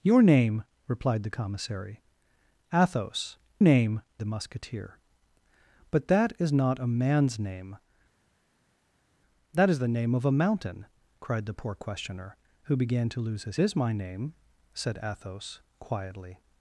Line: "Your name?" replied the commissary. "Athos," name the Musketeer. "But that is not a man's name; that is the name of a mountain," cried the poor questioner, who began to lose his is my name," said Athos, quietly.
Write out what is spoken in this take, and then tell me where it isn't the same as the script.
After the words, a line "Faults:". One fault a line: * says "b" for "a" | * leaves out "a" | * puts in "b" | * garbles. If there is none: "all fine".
"Your name?" replied the commissary. "Athos," name the Musketeer. "But that is not a man's name; that is the name of a mountain," cried the poor questioner, who began to lose his is my name," said Athos, quietly.
Faults:
all fine